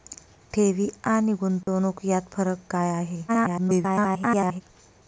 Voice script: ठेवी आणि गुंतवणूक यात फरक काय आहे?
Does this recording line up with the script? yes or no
no